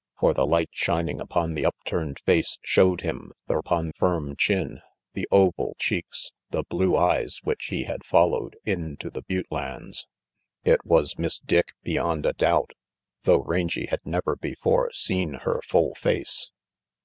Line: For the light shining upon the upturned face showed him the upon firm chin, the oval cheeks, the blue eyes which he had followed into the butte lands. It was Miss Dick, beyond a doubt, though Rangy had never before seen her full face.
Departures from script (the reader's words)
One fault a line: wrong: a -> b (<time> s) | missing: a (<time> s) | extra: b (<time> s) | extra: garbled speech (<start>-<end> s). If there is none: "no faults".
no faults